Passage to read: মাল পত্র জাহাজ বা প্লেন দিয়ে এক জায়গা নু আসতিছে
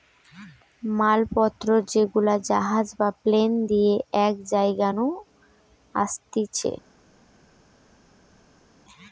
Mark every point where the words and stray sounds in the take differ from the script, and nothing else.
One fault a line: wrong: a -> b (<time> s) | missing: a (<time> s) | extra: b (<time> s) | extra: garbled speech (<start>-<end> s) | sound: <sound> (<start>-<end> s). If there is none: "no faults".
extra: যেগুলা (1.9 s)